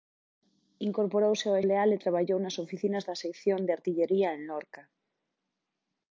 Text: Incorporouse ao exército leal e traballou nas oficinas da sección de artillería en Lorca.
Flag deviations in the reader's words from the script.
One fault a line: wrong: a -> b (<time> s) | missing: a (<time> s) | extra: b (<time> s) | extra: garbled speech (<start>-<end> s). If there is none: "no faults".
missing: exército (1.6 s)